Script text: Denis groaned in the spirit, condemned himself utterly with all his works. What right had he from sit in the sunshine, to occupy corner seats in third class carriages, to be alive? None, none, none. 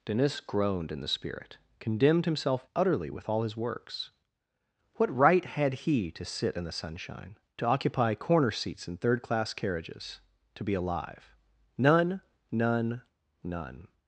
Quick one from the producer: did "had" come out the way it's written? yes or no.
yes